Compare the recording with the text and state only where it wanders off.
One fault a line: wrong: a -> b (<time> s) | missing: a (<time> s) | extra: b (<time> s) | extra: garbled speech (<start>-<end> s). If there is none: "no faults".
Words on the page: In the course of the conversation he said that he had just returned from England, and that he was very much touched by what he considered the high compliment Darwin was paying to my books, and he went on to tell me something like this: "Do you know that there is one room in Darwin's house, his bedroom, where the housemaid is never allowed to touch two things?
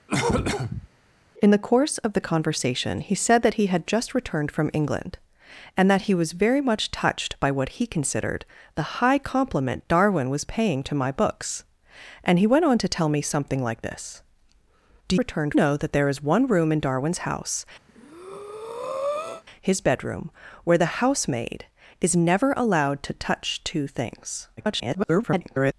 wrong: you -> returned (15.2 s)
extra: garbled speech (24.6-25.7 s)